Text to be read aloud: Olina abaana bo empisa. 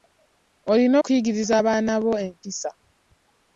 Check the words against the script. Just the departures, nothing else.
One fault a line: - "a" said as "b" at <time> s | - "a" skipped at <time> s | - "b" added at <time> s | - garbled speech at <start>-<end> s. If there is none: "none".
- "okuyigiriza" added at 1.0 s